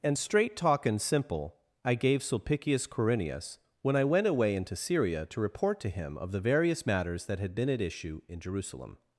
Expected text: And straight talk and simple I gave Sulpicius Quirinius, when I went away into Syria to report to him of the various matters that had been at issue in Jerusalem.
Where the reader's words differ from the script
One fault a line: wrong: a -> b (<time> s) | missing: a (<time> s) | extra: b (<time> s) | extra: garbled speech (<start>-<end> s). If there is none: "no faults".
no faults